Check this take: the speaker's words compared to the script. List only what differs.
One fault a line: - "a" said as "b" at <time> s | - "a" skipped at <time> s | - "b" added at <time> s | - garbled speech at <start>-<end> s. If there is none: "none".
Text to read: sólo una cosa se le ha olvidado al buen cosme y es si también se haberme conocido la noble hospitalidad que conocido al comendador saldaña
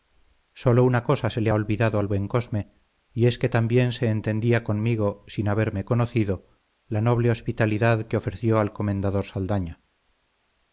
- "si" said as "que" at 3.4 s
- "entendía conmigo sin" added at 4.1 s
- "conocido" said as "ofreció" at 8.2 s